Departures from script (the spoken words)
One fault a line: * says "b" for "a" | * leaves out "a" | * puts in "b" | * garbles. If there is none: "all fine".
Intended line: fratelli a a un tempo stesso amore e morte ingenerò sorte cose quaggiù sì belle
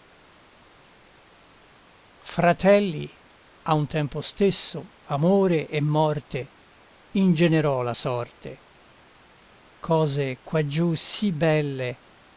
* leaves out "a"
* puts in "la"